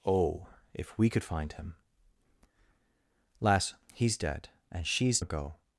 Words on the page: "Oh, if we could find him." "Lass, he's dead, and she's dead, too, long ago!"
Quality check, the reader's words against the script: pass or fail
fail